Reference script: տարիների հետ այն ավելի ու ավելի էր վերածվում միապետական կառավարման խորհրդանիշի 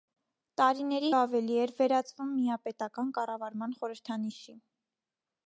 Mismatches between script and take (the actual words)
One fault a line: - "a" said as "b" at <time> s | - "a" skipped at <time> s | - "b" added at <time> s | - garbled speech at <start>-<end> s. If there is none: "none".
- "հետ այն ավելի" skipped at 1.1 s